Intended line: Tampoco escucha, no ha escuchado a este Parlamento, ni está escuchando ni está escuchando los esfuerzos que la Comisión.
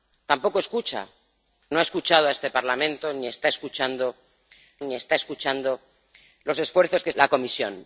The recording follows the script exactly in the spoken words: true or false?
true